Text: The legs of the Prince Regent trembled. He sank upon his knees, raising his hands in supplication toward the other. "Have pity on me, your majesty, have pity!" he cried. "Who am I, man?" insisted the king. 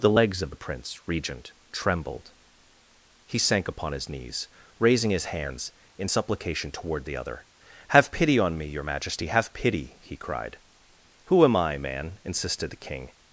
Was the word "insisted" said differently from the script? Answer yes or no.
no